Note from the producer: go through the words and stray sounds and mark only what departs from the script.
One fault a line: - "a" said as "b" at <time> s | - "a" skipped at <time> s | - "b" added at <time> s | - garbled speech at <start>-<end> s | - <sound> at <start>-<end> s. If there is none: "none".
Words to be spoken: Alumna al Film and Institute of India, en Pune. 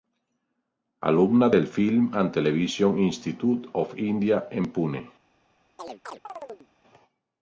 - "al" said as "del" at 1.5 s
- "Television" added at 2.3 s
- chirp at 5.8-6.7 s